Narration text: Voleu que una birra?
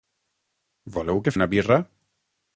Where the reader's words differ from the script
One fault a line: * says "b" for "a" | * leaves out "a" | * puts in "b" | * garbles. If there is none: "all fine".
all fine